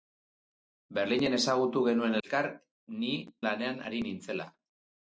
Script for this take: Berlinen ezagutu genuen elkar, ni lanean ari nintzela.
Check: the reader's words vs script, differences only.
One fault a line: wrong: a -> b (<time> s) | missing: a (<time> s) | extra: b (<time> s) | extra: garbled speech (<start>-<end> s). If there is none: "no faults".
no faults